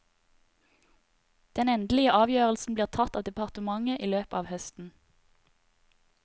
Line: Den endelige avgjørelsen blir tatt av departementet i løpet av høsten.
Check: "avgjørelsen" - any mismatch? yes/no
no